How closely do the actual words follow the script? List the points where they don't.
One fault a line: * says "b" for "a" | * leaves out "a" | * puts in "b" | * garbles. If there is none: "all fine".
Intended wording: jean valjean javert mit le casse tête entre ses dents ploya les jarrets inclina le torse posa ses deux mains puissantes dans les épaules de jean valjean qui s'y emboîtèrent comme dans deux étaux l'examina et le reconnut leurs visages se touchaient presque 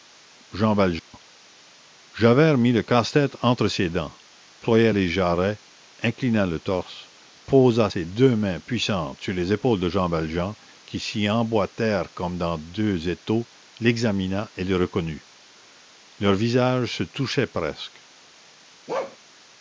* says "sur" for "dans"